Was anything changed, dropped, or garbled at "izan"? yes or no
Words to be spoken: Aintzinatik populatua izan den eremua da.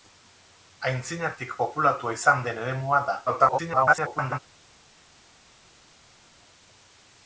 no